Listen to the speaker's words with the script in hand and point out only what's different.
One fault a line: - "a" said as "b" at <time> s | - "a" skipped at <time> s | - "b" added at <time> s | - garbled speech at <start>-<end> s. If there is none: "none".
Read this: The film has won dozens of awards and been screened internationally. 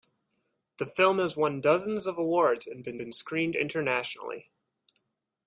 - "been" added at 3.0 s